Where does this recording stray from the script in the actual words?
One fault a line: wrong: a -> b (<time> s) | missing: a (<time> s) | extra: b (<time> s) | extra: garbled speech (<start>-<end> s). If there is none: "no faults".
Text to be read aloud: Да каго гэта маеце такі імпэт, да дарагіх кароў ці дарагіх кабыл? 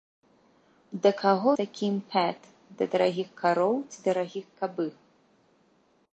missing: гэта маеце (1.5 s)